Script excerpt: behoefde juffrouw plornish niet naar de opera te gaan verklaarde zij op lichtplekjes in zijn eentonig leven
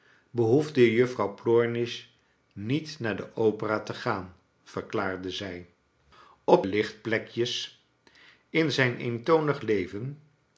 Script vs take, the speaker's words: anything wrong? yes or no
no